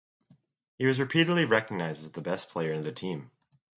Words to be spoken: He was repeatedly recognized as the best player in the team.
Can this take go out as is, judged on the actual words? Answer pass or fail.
pass